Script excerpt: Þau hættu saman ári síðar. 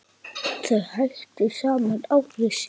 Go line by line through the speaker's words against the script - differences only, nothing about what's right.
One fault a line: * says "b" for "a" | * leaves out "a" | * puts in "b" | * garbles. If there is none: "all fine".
all fine